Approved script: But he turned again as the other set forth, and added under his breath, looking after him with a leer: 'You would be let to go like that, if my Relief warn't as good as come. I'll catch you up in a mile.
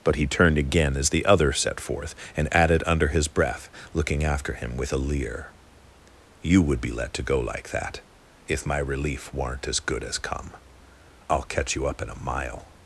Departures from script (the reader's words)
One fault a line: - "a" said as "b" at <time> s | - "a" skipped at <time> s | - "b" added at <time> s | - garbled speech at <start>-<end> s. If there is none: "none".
none